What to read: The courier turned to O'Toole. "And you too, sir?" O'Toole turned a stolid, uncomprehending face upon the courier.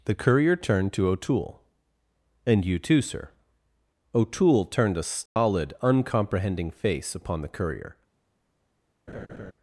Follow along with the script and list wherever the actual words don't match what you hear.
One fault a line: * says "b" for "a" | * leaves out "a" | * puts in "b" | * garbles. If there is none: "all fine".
all fine